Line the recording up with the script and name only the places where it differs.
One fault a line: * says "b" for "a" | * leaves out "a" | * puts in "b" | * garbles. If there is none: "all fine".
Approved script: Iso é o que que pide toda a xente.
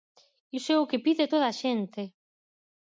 * leaves out "que"